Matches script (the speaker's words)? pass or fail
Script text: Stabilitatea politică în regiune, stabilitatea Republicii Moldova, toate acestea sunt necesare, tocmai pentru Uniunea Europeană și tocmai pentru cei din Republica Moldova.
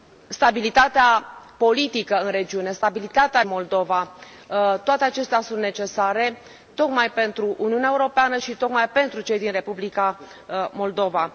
fail